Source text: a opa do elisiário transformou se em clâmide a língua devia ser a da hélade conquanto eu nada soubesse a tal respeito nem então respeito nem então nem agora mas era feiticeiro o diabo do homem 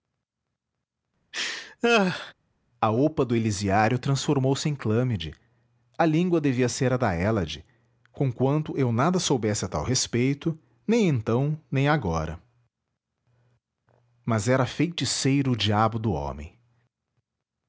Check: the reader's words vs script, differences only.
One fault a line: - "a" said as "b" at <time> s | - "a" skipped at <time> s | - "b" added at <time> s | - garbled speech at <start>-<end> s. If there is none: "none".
- "respeito nem então" skipped at 11.6 s